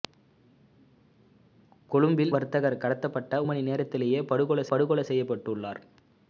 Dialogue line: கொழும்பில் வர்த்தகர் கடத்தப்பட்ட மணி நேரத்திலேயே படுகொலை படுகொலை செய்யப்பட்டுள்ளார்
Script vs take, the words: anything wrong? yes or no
no